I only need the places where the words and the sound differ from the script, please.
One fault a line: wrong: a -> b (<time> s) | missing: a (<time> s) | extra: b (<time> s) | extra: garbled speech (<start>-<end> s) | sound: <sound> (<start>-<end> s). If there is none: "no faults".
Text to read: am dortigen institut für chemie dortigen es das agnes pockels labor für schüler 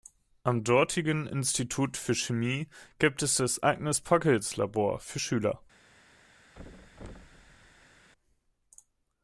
wrong: dortigen -> gibt (3.0 s)
sound: thud (6.5-8.1 s)